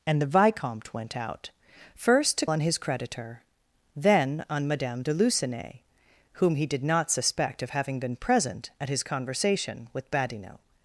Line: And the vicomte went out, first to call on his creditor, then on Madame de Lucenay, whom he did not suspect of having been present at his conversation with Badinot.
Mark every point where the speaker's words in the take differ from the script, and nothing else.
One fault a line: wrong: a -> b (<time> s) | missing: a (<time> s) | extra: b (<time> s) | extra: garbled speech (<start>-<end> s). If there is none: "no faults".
missing: call (2.5 s)